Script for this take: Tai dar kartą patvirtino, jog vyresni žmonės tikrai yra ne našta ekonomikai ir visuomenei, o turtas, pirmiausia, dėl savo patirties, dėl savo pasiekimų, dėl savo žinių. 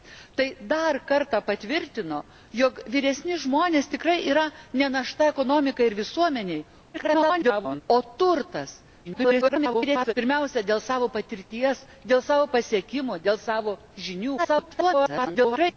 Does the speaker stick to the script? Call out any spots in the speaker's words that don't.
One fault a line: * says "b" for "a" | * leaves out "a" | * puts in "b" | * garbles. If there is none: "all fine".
* garbles
* garbles
* garbles